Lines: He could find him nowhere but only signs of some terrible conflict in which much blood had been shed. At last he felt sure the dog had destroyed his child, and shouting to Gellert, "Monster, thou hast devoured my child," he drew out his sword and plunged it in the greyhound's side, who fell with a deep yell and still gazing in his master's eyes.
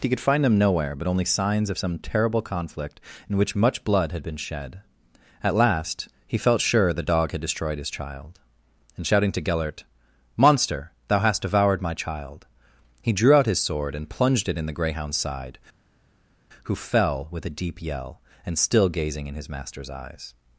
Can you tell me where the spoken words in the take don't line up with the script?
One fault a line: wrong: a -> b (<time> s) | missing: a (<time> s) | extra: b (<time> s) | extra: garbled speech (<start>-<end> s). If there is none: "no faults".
wrong: him -> them (0.4 s)